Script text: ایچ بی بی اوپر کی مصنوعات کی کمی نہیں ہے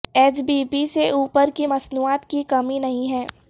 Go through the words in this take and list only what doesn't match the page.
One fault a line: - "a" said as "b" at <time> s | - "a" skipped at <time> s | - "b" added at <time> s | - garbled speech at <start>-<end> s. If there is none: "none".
- "سے" added at 0.8 s